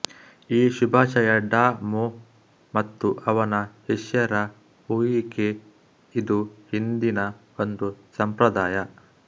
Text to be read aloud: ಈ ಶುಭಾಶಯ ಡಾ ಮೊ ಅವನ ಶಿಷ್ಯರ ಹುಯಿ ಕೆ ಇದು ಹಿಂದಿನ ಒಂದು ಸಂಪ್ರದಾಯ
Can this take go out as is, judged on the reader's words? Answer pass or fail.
fail